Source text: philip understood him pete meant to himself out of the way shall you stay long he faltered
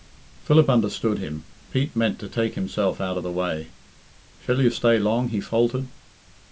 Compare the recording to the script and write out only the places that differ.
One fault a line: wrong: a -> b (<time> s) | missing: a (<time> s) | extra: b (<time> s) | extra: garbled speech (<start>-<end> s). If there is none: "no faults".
extra: take (2.3 s)